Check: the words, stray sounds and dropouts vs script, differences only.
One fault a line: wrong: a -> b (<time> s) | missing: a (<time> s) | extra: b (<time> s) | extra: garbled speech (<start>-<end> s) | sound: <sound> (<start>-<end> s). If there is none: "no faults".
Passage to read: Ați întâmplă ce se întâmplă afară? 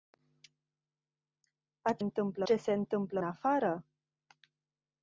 no faults